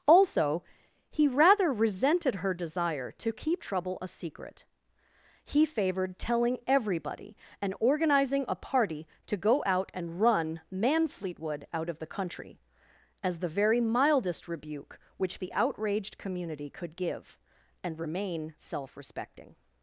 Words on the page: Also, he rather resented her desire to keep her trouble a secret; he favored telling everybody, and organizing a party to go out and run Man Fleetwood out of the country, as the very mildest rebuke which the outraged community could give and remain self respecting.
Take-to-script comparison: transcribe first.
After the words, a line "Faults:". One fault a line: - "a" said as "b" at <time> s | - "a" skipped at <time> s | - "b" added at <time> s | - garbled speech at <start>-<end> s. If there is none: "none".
Also, he rather resented her desire to keep trouble a secret; he favored telling everybody, and organizing a party to go out and run Man Fleetwood out of the country, as the very mildest rebuke which the outraged community could give and remain self respecting.
Faults:
- "her" skipped at 3.6 s